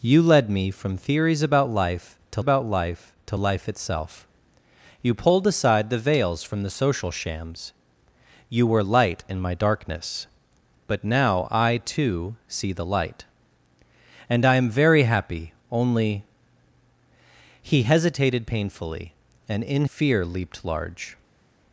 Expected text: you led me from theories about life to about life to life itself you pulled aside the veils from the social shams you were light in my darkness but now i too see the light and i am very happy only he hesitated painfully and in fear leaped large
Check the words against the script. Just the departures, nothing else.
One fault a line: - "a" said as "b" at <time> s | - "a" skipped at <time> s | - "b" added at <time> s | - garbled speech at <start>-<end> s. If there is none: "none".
none